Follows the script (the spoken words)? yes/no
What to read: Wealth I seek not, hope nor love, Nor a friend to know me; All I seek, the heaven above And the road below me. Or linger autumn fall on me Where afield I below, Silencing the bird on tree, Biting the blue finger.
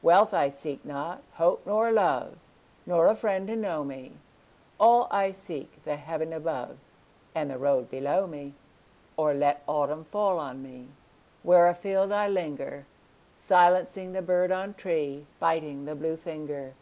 no